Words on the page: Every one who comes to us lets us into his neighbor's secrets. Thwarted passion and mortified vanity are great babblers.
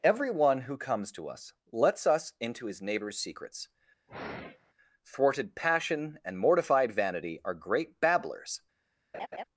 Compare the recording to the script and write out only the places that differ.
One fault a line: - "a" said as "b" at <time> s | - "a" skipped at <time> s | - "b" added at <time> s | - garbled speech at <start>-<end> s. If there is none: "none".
none